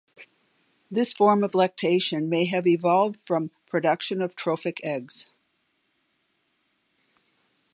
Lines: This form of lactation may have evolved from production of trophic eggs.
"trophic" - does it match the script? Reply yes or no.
yes